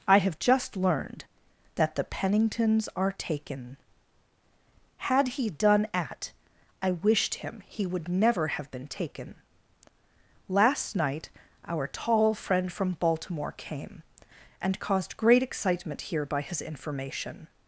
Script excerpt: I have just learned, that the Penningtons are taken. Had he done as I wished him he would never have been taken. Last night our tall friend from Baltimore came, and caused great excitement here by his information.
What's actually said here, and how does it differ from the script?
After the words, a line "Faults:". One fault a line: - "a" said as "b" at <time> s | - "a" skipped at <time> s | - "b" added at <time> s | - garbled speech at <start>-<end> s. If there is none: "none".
I have just learned, that the Penningtons are taken. Had he done at I wished him he would never have been taken. Last night our tall friend from Baltimore came, and caused great excitement here by his information.
Faults:
- "as" said as "at" at 5.9 s